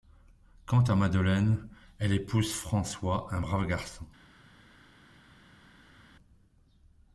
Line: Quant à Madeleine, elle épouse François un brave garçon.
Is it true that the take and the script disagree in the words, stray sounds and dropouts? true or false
false